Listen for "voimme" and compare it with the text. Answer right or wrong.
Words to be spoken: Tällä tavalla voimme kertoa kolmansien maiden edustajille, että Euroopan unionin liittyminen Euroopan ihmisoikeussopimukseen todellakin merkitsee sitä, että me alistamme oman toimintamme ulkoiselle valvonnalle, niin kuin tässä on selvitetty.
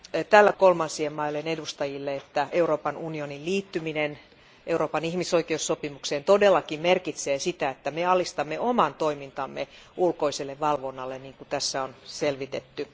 wrong